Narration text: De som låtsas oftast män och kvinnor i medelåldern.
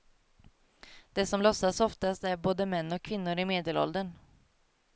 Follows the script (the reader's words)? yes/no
no